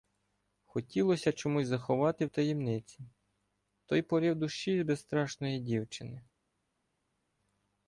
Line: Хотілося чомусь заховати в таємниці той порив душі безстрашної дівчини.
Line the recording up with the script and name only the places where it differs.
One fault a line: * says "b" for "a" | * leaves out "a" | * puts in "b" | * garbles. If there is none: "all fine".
all fine